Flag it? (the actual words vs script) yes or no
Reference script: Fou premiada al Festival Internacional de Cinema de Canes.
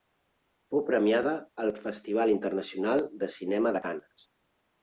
no